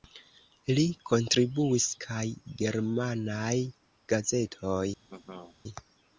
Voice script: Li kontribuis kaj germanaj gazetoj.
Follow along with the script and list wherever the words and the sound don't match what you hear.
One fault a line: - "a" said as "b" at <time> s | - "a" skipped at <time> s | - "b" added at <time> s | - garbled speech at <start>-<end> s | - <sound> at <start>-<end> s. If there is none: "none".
- laugh at 5.1-5.6 s